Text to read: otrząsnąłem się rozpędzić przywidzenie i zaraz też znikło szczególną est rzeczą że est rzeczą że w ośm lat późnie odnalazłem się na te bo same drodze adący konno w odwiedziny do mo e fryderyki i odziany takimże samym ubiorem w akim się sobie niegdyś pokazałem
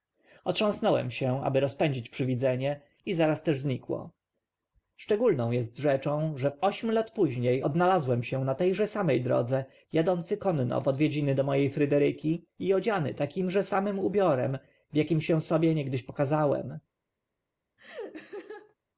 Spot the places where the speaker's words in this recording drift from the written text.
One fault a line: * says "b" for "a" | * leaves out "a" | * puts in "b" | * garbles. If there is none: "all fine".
* puts in "aby"
* leaves out "est rzeczą że"
* says "że" for "bo"